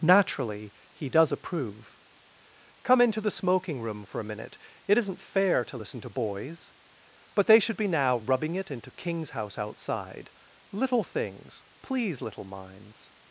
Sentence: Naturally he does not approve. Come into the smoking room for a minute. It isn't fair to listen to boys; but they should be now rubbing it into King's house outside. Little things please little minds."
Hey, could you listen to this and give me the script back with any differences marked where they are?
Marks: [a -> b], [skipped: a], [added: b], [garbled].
Naturally he does [skipped: not] approve. Come into the smoking room for a minute. It isn't fair to listen to boys; but they should be now rubbing it into King's house outside. Little things please little minds."